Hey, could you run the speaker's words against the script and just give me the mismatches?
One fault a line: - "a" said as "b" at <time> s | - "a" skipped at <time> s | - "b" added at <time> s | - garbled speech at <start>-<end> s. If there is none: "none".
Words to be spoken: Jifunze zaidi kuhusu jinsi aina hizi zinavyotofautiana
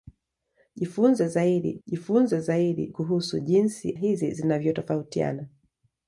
- "jifunze zaidi" added at 1.9 s
- "aina" skipped at 3.9 s